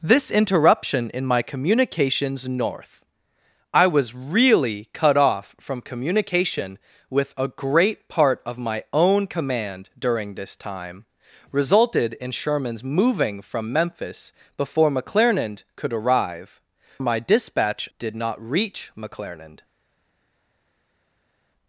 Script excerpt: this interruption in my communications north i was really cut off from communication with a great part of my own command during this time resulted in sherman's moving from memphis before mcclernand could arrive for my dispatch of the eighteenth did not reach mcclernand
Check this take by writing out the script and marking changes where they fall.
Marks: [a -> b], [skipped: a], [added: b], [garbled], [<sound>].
this interruption in my communications north i was really cut off from communication with a great part of my own command during this time resulted in sherman's moving from memphis before mcclernand could arrive [skipped: for] my dispatch [skipped: of the eighteenth] did not reach mcclernand